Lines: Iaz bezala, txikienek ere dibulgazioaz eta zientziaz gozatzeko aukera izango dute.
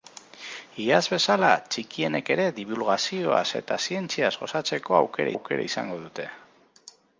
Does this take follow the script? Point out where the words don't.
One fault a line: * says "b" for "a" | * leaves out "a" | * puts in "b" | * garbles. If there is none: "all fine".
* puts in "aukera"